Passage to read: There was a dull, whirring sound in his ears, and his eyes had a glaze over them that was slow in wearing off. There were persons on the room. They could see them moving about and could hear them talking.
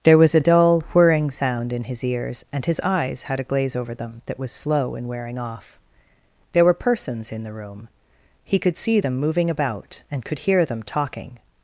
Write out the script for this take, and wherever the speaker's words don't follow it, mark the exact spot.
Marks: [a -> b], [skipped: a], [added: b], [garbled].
There was a dull, whirring sound in his ears, and his eyes had a glaze over them that was slow in wearing off. There were persons [on -> in] the room. [They -> He] could see them moving about and could hear them talking.